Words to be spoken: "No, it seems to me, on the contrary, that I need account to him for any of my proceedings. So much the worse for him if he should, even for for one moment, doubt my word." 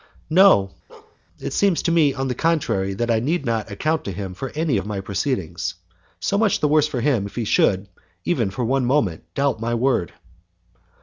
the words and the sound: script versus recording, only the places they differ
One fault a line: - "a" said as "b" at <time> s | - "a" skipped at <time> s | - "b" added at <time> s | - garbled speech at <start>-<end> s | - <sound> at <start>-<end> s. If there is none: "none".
- bark at 0.9-1.2 s
- "not" added at 3.5 s
- "for" skipped at 8.6 s